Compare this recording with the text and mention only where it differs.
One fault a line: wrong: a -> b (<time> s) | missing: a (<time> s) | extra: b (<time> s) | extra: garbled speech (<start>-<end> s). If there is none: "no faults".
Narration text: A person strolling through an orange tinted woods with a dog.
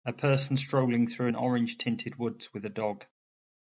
no faults